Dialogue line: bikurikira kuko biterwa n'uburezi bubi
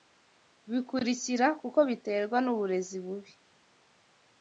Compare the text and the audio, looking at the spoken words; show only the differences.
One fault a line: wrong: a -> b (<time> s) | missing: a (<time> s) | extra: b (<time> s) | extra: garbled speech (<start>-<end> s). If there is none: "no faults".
no faults